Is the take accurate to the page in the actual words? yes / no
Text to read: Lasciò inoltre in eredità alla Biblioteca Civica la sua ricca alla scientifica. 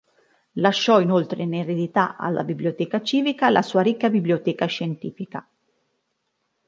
no